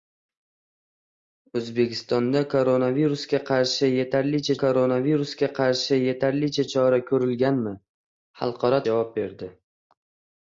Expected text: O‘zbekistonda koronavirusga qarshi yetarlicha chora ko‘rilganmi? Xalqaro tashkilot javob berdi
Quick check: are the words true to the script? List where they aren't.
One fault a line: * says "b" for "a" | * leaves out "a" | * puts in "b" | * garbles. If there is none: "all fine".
* puts in "koronavirusga qarshi yetarlicha"
* leaves out "tashkilot"